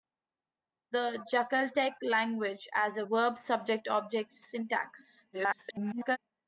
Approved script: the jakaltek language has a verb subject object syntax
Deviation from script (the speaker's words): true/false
true